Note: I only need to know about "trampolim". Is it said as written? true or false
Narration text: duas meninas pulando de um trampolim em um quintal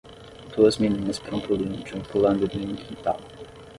false